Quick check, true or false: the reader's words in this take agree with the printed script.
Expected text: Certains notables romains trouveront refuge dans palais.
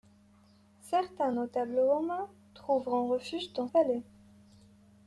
true